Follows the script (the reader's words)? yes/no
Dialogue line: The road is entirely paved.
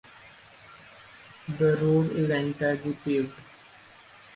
yes